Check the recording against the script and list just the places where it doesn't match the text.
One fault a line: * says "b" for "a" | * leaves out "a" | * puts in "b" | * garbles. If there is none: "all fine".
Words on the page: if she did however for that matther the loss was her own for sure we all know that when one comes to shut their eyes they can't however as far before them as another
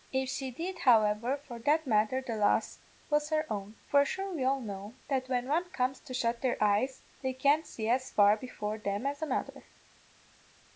* says "see" for "however"